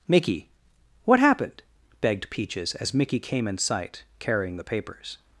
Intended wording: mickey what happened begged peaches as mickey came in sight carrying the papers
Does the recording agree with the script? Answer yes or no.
yes